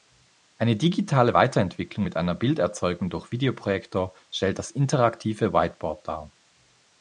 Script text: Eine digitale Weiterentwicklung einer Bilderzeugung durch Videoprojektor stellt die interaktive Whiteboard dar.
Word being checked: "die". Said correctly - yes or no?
no